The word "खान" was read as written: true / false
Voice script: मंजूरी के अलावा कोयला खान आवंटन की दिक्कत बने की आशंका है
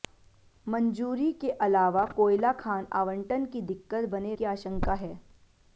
true